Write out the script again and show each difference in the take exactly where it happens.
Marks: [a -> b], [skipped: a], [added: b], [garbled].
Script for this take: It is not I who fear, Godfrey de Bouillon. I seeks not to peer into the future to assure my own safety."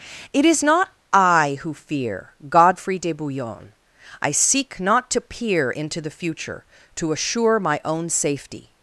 It is not I who fear, Godfrey de Bouillon. I [seeks -> seek] not to peer into the future to assure my own safety."